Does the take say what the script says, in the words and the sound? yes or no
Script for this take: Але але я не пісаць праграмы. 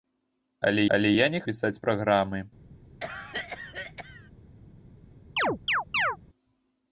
no